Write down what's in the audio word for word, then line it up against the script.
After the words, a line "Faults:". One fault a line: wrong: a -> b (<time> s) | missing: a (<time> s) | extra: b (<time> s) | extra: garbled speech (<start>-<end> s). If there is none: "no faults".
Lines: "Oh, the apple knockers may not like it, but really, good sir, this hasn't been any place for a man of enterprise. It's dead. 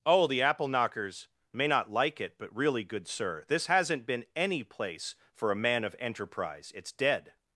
"Oh, the apple knockers may not like it, but really, good sir, this hasn't been any place for a man of enterprise. It's dead.
Faults:
no faults